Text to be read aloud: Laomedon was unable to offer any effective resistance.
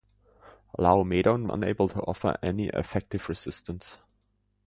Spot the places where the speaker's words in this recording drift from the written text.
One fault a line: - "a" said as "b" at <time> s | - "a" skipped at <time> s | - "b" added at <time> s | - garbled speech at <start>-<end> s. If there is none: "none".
- "was" skipped at 1.5 s